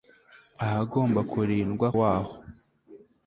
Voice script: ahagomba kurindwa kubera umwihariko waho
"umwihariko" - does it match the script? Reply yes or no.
no